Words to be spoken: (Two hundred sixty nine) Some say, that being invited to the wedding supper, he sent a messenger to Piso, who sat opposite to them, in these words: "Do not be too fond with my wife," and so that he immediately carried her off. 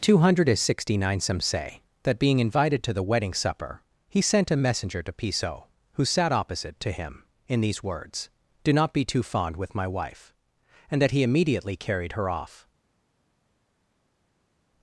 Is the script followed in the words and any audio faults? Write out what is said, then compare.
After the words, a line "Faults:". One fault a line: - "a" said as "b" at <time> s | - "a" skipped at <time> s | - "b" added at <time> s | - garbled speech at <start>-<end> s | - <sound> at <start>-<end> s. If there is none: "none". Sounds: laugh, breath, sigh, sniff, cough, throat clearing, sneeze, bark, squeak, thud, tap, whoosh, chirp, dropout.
(Two hundred sixty nine) Some say, that being invited to the wedding supper, he sent a messenger to Piso, who sat opposite to him, in these words: "Do not be too fond with my wife," and that he immediately carried her off.
Faults:
- "them" said as "him" at 6.9 s
- "so" skipped at 11.0 s